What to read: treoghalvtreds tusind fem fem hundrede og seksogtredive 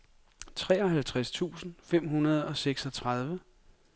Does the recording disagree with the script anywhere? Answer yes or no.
yes